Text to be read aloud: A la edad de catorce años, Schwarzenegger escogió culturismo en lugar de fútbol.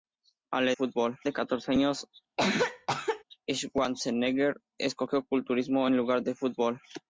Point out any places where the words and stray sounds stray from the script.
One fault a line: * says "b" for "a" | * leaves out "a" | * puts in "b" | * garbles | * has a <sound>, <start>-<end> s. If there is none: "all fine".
* says "fútbol" for "edad"
* has a cough, 2.4-3.2 s